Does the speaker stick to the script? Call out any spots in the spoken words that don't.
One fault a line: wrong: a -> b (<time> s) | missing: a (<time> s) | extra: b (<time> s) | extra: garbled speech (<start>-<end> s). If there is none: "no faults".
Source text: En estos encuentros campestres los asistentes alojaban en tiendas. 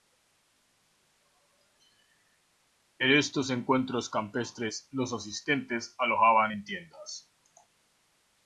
no faults